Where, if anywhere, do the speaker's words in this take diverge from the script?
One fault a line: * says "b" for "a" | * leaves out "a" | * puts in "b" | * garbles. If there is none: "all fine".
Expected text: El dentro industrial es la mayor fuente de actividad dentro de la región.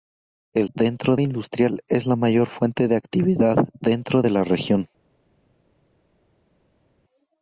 all fine